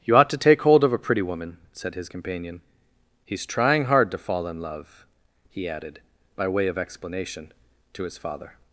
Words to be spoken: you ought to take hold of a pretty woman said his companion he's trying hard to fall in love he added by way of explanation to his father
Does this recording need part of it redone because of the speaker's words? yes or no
no